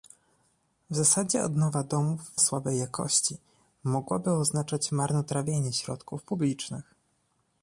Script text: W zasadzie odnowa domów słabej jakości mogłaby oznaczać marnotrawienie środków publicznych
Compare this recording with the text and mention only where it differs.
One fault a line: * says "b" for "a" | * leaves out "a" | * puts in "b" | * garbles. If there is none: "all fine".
all fine